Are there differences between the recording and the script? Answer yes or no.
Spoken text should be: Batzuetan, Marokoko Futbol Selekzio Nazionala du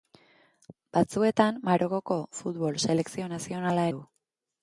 no